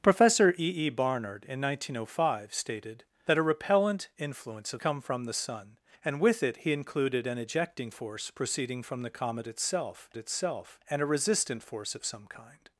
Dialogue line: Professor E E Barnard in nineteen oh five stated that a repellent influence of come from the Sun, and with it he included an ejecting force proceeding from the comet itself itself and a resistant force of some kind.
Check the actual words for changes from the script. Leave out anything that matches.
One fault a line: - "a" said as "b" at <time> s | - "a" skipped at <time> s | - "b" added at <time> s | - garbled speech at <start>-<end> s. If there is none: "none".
none